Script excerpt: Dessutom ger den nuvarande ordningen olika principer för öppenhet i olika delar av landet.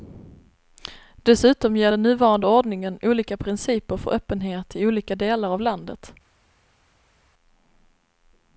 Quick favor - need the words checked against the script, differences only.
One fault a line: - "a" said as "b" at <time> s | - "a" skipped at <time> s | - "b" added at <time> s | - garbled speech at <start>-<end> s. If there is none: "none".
none